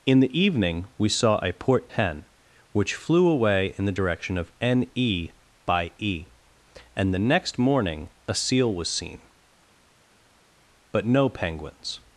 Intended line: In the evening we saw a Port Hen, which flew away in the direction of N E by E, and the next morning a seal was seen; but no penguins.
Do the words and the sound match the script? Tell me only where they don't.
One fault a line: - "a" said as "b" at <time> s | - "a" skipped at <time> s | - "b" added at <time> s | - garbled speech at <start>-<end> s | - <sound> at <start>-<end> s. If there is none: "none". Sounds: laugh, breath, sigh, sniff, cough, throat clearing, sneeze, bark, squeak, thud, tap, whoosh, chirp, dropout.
none